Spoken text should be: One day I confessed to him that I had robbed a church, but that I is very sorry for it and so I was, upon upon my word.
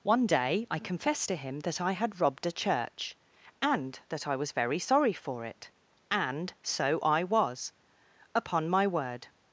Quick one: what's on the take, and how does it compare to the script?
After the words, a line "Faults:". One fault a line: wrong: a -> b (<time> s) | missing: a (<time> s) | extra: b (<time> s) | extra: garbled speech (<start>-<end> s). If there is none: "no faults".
One day I confessed to him that I had robbed a church, and that I was very sorry for it and so I was, upon my word.
Faults:
wrong: but -> and (3.6 s)
wrong: is -> was (4.4 s)
missing: upon (8.7 s)